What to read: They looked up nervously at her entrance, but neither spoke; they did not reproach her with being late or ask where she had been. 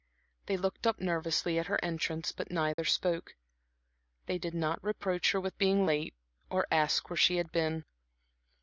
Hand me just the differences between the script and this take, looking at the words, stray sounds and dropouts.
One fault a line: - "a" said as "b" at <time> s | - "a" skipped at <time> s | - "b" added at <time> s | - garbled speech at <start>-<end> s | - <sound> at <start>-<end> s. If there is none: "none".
- dropout at 2.7-2.8 s